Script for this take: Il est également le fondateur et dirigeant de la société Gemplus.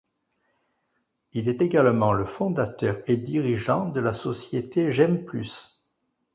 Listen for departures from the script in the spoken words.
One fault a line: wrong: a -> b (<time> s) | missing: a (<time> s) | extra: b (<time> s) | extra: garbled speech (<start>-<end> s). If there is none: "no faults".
no faults